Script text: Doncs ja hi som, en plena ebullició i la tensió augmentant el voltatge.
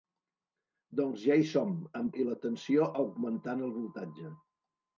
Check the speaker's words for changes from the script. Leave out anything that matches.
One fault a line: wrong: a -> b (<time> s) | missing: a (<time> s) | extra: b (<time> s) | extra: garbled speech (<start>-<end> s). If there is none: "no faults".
missing: plena ebullició (2.1 s)